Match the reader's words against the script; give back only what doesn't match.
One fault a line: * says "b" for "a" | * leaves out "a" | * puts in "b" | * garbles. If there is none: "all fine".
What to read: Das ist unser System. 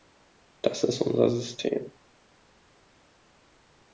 all fine